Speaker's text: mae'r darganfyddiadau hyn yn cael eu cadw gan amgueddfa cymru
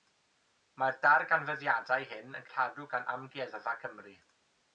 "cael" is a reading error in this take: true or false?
true